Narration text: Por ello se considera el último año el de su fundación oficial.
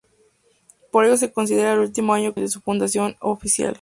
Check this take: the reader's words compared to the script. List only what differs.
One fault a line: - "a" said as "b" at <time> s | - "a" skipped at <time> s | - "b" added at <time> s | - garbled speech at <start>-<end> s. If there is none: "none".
none